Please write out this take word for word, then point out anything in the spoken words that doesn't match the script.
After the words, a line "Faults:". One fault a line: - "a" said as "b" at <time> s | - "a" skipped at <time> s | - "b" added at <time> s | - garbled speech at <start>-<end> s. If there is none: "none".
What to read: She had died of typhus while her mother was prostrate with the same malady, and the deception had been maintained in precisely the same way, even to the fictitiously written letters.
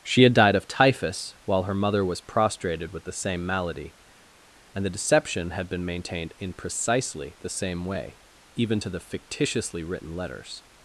She had died of typhus while her mother was prostrated with the same malady, and the deception had been maintained in precisely the same way, even to the fictitiously written letters.
Faults:
- "prostrate" said as "prostrated" at 2.2 s